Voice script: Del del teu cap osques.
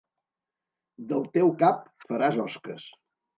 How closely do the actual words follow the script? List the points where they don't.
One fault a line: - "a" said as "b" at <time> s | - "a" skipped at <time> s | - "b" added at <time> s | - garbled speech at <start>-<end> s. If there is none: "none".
- "del" skipped at 1.3 s
- "faràs" added at 2.1 s